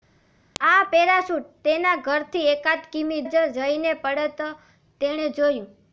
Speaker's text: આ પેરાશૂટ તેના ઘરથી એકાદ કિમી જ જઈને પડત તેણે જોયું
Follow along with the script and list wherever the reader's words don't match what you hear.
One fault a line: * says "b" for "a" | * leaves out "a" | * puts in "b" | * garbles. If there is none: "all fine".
all fine